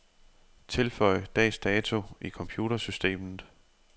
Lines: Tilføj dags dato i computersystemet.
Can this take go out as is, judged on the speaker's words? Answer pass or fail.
pass